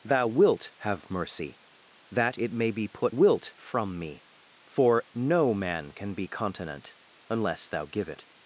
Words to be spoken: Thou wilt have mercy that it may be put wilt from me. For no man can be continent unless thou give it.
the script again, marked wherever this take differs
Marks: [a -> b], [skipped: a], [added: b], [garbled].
Thou wilt have mercy that it may be put wilt from me. For no man can be continent unless thou give it.